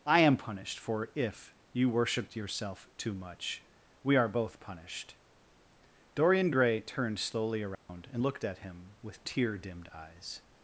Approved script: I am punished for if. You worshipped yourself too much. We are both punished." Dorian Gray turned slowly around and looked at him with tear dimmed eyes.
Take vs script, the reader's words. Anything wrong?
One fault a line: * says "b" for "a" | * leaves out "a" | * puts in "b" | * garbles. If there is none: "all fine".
all fine